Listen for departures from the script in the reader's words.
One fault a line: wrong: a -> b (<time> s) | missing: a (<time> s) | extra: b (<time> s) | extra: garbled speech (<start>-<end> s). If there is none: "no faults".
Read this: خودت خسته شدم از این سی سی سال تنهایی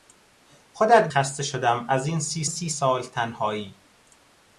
no faults